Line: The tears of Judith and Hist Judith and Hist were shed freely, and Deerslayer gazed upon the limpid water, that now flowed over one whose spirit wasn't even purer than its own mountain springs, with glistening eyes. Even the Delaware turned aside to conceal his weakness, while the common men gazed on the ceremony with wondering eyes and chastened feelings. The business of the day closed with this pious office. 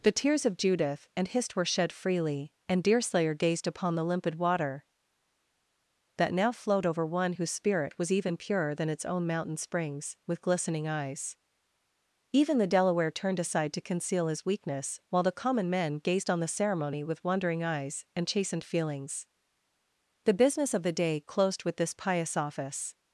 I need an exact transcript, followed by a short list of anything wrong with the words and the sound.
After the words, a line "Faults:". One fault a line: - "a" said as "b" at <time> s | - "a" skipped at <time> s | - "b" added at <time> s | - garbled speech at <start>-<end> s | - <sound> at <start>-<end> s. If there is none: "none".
The tears of Judith and Hist were shed freely, and Deerslayer gazed upon the limpid water, that now flowed over one whose spirit was even purer than its own mountain springs, with glistening eyes. Even the Delaware turned aside to conceal his weakness, while the common men gazed on the ceremony with wondering eyes and chastened feelings. The business of the day closed with this pious office.
Faults:
- "Judith and Hist" skipped at 1.6 s
- "wasn't" said as "was" at 8.0 s